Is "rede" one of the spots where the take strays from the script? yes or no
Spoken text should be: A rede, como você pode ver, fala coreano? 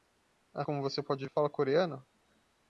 yes